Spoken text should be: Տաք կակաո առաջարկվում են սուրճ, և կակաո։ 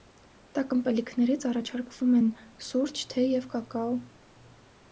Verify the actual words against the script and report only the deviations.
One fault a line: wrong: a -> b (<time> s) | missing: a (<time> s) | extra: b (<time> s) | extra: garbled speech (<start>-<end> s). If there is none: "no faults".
wrong: կակաո -> ըմպելիքներից (0.8 s)
extra: թեյ (3.1 s)